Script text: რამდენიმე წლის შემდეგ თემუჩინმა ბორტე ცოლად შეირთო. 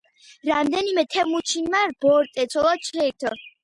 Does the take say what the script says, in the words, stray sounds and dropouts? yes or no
no